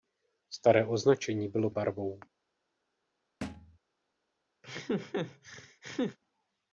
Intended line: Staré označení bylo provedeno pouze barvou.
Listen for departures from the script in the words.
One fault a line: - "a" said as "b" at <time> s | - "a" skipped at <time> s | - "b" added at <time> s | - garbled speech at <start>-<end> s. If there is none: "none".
- "provedeno pouze" skipped at 1.7 s